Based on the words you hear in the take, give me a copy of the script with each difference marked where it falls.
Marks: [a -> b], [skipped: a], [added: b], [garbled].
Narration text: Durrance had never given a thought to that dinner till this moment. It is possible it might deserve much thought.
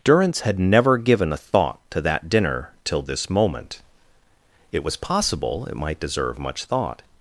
Durrance had never given a thought to that dinner till this moment. It [is -> was] possible it might deserve much thought.